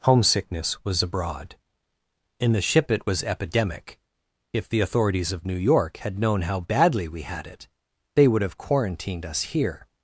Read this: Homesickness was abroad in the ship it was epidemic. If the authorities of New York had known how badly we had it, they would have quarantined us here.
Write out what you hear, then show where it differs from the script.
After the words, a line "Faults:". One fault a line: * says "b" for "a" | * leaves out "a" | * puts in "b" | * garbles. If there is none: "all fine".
Homesickness was abroad in the ship it was epidemic. If the authorities of New York had known how badly we had it, they would have quarantined us here.
Faults:
all fine